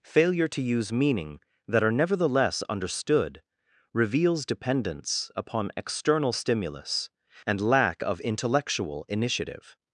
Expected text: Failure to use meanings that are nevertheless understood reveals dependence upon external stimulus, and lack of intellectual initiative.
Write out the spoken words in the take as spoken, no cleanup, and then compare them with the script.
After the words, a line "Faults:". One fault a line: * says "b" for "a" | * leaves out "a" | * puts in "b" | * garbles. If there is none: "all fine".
Failure to use meaning that are nevertheless understood reveals dependence upon external stimulus, and lack of intellectual initiative.
Faults:
* says "meaning" for "meanings"